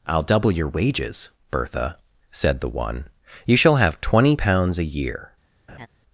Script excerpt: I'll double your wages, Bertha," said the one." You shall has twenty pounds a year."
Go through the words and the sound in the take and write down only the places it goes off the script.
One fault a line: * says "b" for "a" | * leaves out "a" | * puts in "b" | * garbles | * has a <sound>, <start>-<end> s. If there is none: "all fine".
* says "have" for "has"
* has a laugh, 5.7-5.9 s